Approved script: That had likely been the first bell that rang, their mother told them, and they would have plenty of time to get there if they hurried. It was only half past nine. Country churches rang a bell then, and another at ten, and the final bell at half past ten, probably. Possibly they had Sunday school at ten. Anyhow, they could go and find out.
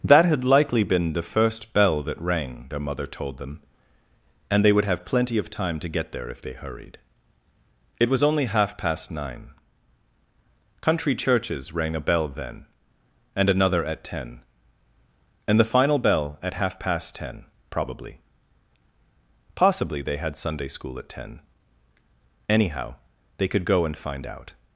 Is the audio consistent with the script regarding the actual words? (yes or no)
yes